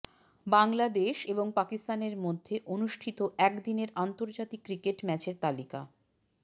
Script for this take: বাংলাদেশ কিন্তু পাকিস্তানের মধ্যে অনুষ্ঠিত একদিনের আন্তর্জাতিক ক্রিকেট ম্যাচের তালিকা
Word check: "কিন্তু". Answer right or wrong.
wrong